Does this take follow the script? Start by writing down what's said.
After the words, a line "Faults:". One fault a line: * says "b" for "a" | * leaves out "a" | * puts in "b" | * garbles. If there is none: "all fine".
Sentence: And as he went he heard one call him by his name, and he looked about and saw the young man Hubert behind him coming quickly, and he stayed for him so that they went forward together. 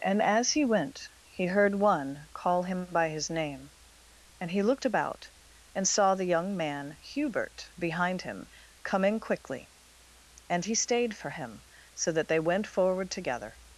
And as he went he heard one call him by his name, and he looked about and saw the young man Hubert behind him coming quickly, and he stayed for him so that they went forward together.
Faults:
all fine